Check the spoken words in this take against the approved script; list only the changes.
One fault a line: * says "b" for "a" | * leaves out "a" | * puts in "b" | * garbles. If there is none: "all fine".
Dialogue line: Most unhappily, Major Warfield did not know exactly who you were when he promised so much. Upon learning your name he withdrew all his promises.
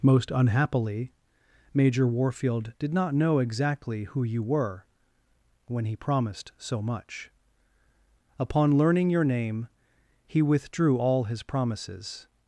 all fine